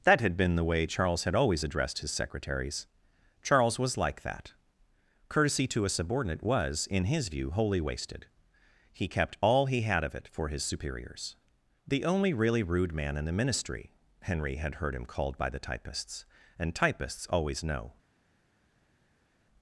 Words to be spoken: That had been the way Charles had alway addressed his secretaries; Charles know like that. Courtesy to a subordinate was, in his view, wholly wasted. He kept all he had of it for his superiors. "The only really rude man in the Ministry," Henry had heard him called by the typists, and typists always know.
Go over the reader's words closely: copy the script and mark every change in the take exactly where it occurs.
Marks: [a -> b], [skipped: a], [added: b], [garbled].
That had been the way Charles had [alway -> always] addressed his secretaries; Charles [know -> was] like that. Courtesy to a subordinate was, in his view, wholly wasted. He kept all he had of it for his superiors. "The only really rude man in the Ministry," Henry had heard him called by the typists, and typists always know.